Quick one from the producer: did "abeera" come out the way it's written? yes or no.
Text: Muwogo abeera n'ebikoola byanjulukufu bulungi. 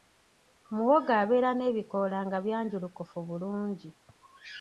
yes